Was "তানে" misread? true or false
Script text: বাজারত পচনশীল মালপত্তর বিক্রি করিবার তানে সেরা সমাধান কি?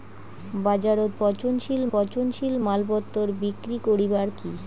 true